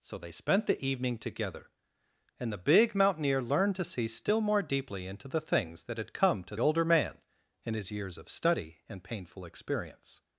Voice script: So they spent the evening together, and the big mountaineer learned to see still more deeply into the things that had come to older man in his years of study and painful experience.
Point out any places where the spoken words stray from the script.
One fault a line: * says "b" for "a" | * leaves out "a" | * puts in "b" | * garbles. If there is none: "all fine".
all fine